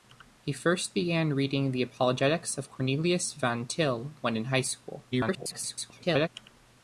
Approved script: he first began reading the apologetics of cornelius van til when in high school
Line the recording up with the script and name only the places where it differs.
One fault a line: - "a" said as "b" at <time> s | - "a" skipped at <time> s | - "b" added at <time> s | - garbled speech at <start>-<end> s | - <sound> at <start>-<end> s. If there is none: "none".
- garbled speech at 5.1-6.3 s